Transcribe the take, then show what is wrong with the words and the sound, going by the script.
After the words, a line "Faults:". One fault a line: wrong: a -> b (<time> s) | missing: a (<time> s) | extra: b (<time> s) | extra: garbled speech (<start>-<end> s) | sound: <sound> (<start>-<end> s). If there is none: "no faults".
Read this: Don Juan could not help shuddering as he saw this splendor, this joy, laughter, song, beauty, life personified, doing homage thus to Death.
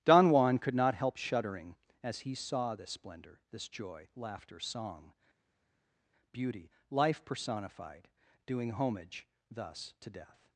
Don Juan could not help shuddering as he saw this splendor, this joy, laughter, song, beauty, life personified, doing homage thus to Death.
Faults:
no faults